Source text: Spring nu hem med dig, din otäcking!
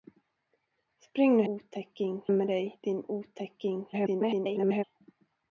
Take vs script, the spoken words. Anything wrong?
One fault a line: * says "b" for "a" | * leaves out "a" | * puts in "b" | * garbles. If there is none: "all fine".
* says "otäcking" for "hem"
* garbles